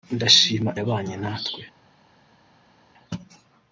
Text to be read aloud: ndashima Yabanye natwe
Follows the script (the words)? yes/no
yes